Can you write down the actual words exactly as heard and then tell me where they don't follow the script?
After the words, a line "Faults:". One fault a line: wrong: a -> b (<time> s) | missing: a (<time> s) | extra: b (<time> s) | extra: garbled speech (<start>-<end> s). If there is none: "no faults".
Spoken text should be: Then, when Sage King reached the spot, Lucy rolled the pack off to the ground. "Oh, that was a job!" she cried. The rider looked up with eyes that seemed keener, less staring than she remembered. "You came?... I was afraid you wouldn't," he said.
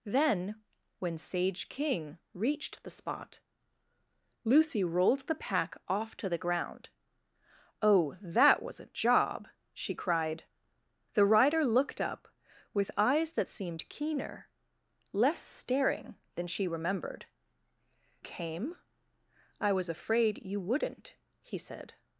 Then, when Sage King reached the spot, Lucy rolled the pack off to the ground. "Oh, that was a job!" she cried. The rider looked up with eyes that seemed keener, less staring than she remembered. "Came?... I was afraid you wouldn't," he said.
Faults:
missing: You (17.3 s)